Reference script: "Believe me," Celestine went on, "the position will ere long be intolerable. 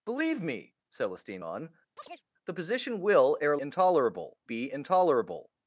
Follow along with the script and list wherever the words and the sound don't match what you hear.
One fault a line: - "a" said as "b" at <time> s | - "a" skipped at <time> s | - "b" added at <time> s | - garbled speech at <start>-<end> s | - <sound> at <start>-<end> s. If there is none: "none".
- "went" skipped at 1.4 s
- chirp at 2.0-2.2 s
- "long" said as "intolerable" at 3.6 s